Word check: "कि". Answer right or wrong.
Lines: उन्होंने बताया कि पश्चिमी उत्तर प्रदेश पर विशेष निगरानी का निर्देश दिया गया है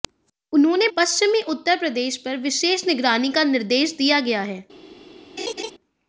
wrong